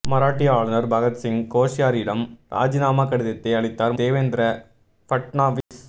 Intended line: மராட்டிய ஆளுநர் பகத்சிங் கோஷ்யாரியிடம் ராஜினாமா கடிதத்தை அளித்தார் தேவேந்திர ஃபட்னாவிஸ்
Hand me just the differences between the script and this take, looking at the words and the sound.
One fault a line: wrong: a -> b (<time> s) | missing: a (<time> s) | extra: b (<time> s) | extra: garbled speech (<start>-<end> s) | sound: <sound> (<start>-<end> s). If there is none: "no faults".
sound: dropout (5.6-5.7 s)